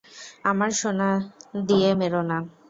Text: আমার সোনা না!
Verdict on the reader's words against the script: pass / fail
fail